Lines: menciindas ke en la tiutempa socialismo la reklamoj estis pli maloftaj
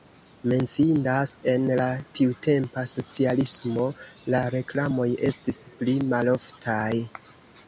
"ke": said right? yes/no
no